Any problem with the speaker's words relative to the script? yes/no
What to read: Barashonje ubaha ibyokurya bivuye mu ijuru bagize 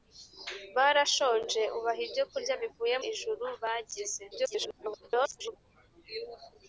yes